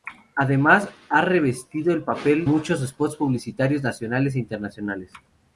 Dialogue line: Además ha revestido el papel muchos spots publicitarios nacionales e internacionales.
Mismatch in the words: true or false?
false